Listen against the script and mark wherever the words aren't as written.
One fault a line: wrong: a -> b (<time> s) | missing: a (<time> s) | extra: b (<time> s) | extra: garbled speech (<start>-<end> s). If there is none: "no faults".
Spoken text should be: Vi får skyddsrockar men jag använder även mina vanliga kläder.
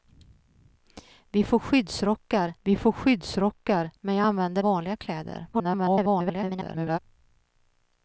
extra: vi får skyddsrockar (2.6 s)
missing: även mina (4.6 s)
extra: garbled speech (5.5-7.0 s)